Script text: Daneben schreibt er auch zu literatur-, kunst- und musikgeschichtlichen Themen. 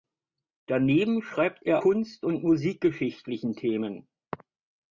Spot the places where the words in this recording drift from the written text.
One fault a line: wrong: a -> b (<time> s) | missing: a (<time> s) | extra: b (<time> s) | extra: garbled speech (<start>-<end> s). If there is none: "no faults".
missing: auch zu literatur (1.8 s)